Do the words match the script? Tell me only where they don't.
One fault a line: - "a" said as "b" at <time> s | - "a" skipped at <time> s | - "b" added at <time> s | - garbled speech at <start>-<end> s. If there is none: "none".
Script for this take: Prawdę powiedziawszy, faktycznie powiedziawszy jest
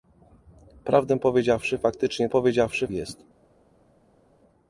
none